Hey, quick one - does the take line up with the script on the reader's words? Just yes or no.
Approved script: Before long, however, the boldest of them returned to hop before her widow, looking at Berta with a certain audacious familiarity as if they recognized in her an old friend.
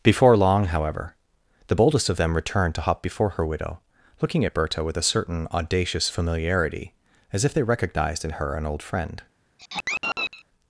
yes